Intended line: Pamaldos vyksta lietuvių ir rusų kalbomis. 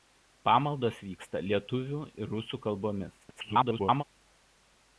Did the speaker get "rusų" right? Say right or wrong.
right